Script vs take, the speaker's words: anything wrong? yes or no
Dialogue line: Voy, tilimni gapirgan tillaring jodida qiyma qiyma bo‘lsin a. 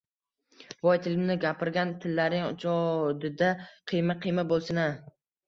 no